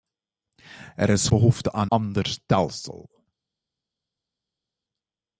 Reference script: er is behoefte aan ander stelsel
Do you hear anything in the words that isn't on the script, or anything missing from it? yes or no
no